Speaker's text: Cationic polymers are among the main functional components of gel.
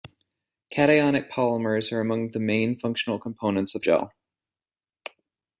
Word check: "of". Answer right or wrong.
right